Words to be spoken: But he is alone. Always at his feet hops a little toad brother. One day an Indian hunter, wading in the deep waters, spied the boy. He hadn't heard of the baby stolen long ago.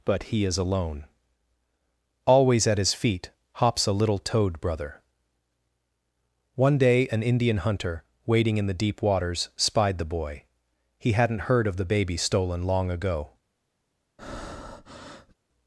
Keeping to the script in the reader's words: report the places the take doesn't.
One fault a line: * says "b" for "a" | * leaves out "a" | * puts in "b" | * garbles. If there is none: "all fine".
all fine